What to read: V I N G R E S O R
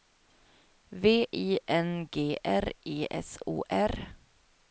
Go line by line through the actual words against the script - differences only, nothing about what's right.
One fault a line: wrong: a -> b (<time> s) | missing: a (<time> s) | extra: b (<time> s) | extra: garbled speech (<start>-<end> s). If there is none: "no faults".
no faults